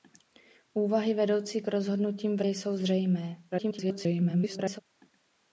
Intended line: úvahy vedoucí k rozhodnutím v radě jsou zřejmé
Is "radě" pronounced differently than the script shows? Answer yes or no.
yes